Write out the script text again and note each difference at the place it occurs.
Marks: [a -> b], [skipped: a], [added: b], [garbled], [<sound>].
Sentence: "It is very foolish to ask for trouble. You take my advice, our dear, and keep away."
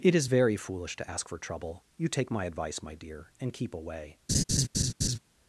"It is very foolish to ask for trouble. You take my advice, [our -> my] dear, and keep away." [laugh]